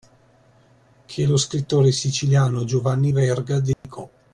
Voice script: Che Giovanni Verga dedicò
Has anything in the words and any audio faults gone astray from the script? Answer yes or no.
yes